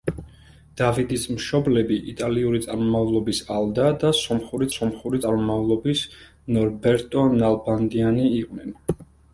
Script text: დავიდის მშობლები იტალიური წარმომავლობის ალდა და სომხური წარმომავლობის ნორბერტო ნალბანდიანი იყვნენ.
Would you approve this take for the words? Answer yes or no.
no